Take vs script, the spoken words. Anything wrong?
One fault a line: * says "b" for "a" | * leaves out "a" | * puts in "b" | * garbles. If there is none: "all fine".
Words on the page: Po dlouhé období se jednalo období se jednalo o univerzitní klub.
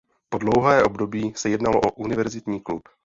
* leaves out "období se jednalo"